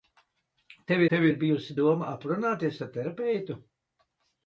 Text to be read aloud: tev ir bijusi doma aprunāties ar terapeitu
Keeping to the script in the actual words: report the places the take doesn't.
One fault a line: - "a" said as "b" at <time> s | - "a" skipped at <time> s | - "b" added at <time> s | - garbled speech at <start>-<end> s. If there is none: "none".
- "tev" added at 1.1 s